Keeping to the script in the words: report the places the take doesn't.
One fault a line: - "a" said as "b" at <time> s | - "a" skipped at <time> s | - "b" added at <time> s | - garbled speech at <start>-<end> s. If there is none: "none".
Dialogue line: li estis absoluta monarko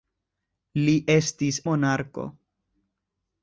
- "absoluta" skipped at 1.6 s